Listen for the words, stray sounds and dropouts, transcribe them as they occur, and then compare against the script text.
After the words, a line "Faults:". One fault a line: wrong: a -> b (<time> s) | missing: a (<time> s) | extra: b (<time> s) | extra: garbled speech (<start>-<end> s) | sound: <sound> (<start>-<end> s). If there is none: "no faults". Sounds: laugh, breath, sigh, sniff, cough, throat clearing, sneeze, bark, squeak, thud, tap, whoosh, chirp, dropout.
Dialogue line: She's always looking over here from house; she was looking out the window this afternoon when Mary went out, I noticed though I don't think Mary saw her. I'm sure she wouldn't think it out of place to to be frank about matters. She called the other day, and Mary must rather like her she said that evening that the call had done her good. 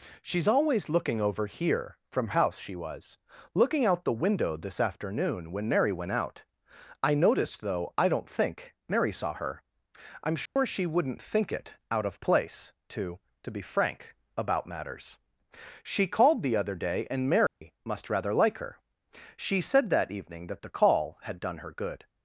She's always looking over here from house; she was looking out the window this afternoon when Mary went out, I noticed though I don't think Mary saw her. I'm sure she wouldn't think it out of place to to be frank about matters. She called the other day, and Mary must rather like her she said that evening that the call had done her good.
Faults:
sound: dropout (10.5-10.6 s)
sound: dropout (17.5-17.6 s)